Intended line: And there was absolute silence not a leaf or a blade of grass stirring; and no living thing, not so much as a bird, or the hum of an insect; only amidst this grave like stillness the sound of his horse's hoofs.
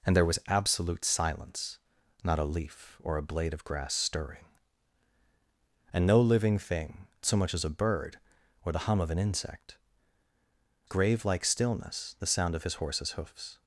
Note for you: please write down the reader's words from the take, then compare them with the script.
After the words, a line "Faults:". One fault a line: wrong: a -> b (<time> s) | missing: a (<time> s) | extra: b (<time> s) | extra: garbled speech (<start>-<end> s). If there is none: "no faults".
And there was absolute silence not a leaf or a blade of grass stirring; and no living thing, so much as a bird, or the hum of an insect; grave like stillness the sound of his horse's hoofs.
Faults:
missing: not (7.1 s)
missing: only amidst this (9.8 s)